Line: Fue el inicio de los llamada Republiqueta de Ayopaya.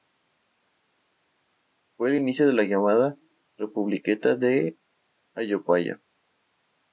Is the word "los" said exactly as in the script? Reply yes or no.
no